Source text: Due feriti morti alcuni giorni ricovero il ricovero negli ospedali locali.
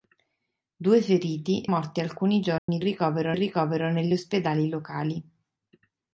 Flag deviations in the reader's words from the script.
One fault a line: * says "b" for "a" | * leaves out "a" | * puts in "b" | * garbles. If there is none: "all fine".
all fine